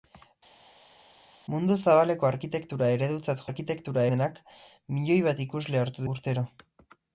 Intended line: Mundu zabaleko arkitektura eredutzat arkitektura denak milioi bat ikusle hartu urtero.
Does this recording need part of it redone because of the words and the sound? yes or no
no